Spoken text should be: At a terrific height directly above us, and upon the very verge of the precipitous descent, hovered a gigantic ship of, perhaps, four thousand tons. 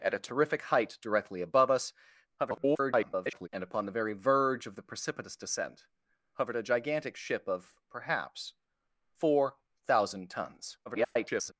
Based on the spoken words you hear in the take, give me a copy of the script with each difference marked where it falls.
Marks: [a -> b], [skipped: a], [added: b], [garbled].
At a terrific height directly above us, [garbled] and upon the very verge of the precipitous descent, hovered a gigantic ship of, perhaps, four thousand tons. [garbled]